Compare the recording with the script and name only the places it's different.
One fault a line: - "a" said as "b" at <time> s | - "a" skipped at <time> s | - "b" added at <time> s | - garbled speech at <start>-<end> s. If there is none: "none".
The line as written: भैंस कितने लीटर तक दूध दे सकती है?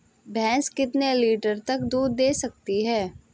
none